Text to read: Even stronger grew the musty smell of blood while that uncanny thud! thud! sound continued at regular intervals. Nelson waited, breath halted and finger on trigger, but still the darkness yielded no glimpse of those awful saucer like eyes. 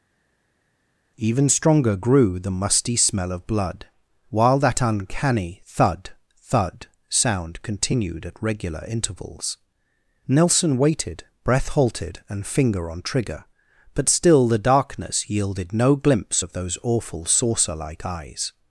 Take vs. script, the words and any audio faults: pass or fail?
pass